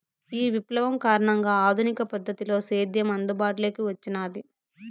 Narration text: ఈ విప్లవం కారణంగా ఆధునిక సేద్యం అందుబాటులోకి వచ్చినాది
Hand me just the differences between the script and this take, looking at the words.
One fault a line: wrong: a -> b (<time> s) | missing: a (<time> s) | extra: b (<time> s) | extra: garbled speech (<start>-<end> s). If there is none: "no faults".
extra: పద్ధతిలో (2.1 s)